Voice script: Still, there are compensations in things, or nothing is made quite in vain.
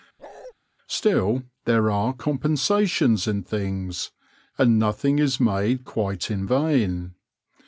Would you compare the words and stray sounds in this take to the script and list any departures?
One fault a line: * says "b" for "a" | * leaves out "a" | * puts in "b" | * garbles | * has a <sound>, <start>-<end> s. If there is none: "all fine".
* has a bark, 0.2-0.5 s
* says "and" for "or"